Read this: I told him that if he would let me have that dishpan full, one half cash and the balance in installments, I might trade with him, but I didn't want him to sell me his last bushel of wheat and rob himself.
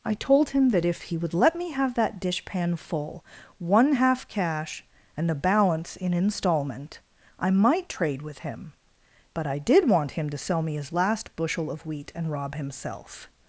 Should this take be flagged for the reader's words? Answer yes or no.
yes